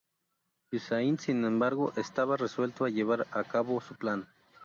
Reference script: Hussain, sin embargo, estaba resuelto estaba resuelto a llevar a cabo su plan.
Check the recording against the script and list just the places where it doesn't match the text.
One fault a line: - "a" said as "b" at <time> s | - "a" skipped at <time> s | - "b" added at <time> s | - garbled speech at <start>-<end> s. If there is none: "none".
- "estaba resuelto" skipped at 2.9 s